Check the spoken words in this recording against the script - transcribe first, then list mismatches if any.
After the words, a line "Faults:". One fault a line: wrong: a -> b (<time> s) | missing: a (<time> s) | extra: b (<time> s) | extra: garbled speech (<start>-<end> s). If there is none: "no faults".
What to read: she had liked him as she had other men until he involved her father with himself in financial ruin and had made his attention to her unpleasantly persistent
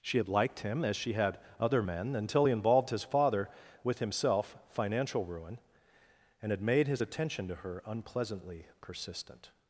she had liked him as she had other men until he involved his father with himself financial ruin and had made his attention to her unpleasantly persistent
Faults:
wrong: her -> his (2.9 s)
missing: in (4.6 s)